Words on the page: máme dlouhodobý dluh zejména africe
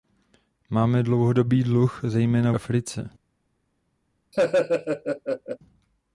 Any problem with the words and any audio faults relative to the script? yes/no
yes